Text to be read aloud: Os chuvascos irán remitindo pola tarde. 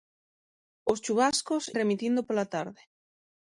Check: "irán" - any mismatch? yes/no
yes